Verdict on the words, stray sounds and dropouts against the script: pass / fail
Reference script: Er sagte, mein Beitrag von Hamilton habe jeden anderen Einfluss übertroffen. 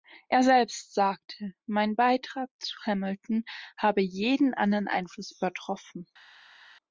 fail